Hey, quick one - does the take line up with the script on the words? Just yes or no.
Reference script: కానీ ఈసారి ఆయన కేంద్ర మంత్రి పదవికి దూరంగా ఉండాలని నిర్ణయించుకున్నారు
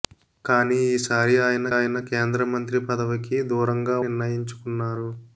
no